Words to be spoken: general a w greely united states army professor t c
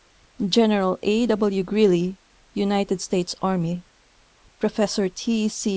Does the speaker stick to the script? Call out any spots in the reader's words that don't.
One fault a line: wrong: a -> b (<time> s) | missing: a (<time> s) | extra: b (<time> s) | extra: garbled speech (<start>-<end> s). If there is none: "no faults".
no faults